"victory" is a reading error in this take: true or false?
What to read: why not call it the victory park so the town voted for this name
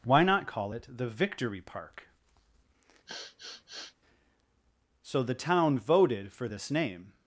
false